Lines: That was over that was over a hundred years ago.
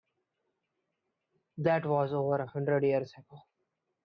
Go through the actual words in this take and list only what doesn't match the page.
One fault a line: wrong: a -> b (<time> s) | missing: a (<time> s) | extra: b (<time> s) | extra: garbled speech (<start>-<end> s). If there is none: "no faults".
missing: that was over (2.4 s)